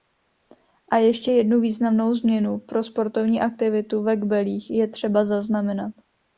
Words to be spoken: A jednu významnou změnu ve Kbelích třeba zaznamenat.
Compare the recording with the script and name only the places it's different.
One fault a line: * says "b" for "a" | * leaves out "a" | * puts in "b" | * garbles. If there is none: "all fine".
* puts in "ještě"
* puts in "pro sportovní aktivitu"
* puts in "je"